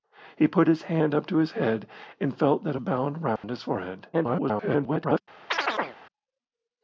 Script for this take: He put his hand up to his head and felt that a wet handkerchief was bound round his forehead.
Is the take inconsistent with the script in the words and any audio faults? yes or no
yes